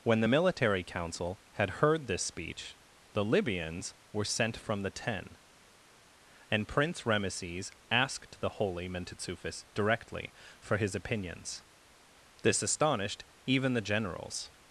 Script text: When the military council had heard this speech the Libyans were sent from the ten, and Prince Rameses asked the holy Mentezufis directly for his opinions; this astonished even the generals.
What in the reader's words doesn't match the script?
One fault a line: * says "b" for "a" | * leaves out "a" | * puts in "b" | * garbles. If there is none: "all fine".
all fine